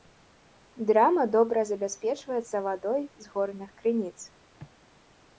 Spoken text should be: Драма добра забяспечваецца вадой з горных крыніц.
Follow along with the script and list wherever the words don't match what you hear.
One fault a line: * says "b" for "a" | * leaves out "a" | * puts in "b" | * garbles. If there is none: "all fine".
all fine